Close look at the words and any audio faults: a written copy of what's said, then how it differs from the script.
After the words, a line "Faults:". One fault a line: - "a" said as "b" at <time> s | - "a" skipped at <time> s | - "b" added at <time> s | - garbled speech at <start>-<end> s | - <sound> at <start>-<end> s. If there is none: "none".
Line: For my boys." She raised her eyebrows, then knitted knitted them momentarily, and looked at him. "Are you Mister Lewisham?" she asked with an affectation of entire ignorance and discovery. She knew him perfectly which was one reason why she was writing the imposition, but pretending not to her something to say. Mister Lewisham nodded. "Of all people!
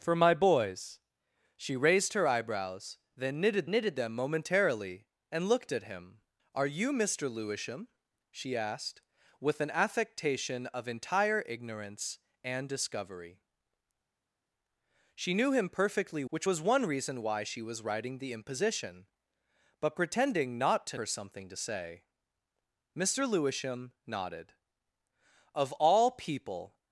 For my boys." She raised her eyebrows, then knitted knitted them momentarily, and looked at him. "Are you Mister Lewisham?" she asked with an affectation of entire ignorance and discovery. She knew him perfectly which was one reason why she was writing the imposition, but pretending not to her something to say. Mister Lewisham nodded. "Of all people!
Faults:
none